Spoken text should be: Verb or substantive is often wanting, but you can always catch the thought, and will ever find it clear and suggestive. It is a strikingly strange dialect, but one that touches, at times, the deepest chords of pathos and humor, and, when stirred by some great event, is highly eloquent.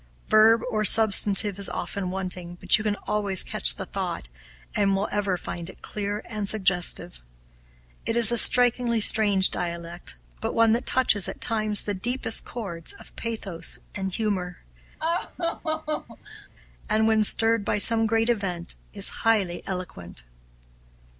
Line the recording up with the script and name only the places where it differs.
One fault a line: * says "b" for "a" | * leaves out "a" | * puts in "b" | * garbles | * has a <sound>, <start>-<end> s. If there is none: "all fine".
* has a laugh, 15.0-16.5 s